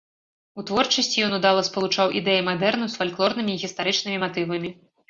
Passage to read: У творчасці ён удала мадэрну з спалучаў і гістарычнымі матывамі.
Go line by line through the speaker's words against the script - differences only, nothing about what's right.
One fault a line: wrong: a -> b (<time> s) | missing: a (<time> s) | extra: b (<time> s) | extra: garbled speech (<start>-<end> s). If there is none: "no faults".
extra: спалучаў ідэі (1.7 s)
wrong: спалучаў -> фальклорнымі (3.0 s)